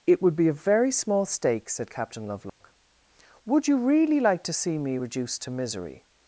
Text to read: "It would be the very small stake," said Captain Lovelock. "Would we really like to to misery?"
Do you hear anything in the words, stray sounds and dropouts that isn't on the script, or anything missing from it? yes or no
yes